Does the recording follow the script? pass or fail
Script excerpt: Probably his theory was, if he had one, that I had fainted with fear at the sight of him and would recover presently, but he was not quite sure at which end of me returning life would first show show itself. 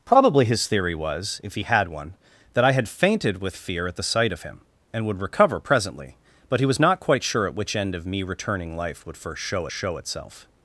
pass